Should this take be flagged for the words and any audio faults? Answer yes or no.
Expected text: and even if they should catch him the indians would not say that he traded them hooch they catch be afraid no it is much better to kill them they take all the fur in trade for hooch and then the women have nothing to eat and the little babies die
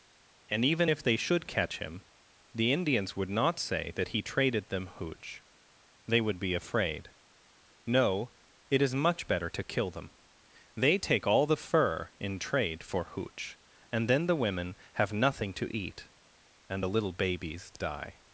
yes